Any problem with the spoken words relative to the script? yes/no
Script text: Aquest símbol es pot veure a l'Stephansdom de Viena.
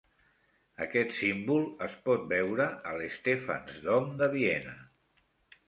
no